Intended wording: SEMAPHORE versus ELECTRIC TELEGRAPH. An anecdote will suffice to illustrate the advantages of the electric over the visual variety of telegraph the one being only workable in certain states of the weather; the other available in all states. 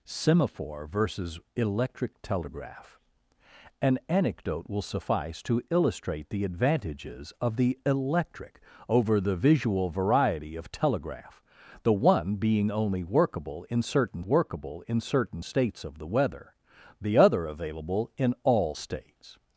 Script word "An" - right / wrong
right